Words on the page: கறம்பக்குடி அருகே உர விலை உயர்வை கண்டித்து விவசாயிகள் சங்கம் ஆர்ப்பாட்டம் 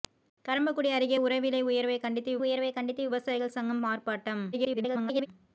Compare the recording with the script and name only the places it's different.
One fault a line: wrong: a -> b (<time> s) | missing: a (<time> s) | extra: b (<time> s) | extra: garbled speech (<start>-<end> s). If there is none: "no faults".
extra: உயர்வை கண்டித்து (2.4 s)
extra: garbled speech (4.5-5.3 s)